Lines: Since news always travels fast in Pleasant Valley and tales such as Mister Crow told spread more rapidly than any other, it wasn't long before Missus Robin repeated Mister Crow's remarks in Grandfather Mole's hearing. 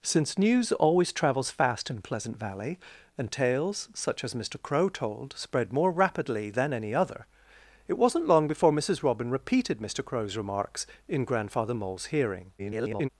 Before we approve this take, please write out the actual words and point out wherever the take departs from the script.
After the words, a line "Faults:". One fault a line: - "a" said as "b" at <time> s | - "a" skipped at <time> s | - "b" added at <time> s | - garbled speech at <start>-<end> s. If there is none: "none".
Since news always travels fast in Pleasant Valley and tales such as Mister Crow told spread more rapidly than any other, it wasn't long before Missus Robin repeated Mister Crow's remarks in Grandfather Mole's hearing. [garbled]
Faults:
- garbled speech at 12.6-13.1 s